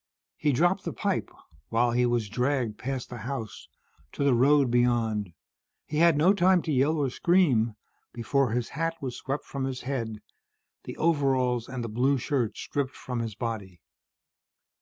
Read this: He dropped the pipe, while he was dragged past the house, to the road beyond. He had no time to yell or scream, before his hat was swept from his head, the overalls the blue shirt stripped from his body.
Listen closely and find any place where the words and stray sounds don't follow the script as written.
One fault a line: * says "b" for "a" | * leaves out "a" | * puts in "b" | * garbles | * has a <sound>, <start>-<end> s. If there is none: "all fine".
* puts in "and"